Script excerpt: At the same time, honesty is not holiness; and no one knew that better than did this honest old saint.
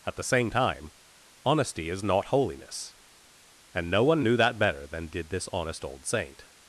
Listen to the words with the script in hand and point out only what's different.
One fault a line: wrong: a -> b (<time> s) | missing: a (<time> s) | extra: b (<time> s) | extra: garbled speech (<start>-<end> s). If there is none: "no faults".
no faults